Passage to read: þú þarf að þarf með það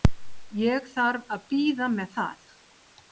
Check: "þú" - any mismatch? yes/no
yes